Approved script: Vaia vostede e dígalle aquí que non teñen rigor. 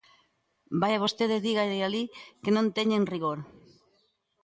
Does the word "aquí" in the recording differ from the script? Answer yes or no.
yes